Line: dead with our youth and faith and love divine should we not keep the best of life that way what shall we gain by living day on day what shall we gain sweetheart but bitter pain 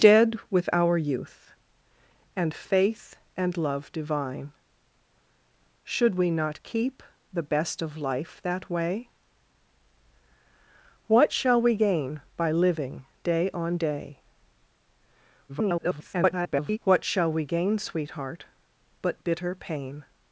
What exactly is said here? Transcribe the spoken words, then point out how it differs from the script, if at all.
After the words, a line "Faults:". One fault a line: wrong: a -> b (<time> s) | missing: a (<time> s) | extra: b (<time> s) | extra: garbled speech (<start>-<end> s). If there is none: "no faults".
dead with our youth and faith and love divine should we not keep the best of life that way what shall we gain by living day on day [garbled] what shall we gain sweetheart but bitter pain
Faults:
extra: garbled speech (15.5-16.8 s)